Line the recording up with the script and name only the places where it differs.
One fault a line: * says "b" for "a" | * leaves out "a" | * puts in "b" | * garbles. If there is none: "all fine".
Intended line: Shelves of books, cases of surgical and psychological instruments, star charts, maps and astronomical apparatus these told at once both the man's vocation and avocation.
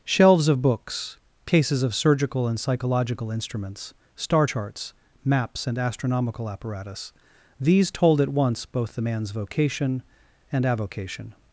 all fine